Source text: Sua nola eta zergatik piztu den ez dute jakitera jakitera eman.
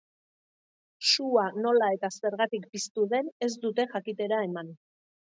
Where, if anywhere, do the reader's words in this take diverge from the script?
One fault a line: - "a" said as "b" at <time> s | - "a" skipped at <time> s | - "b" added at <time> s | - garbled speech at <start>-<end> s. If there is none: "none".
- "jakitera" skipped at 4.4 s